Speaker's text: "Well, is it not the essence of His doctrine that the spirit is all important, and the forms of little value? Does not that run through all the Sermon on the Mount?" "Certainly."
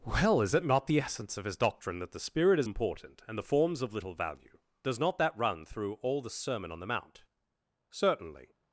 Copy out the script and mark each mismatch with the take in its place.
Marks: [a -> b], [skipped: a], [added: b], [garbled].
"Well, is it not the essence of His doctrine that the spirit is [skipped: all] important, and the forms of little value? Does not that run through all the Sermon on the Mount?" "Certainly."